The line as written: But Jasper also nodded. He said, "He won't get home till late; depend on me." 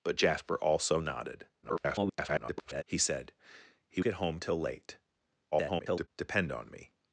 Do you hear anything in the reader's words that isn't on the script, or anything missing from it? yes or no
yes